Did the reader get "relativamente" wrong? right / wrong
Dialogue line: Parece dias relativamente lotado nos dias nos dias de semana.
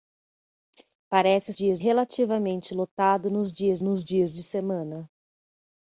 right